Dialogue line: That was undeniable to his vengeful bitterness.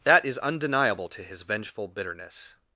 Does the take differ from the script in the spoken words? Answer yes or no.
yes